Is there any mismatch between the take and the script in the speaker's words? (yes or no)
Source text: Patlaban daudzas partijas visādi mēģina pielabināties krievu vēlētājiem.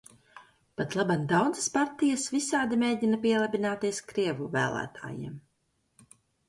no